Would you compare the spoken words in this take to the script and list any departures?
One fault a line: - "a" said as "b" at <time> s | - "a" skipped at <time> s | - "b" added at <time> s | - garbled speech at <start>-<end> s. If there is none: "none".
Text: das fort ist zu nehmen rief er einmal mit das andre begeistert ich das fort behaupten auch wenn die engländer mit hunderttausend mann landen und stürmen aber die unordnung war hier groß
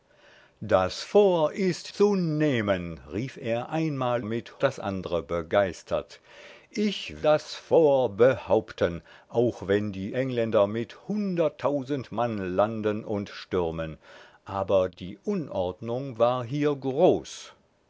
none